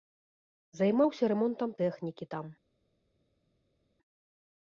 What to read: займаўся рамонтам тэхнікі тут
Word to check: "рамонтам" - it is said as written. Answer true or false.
true